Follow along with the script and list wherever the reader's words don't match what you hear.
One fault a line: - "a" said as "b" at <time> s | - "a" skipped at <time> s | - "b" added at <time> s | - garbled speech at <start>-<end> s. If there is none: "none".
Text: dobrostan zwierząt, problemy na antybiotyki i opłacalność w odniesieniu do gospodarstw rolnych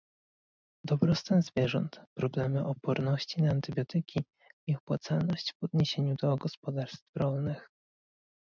- "oporności" added at 2.7 s